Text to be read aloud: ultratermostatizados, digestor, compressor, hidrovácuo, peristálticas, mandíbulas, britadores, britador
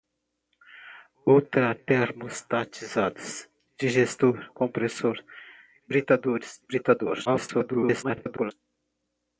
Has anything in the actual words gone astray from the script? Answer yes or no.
yes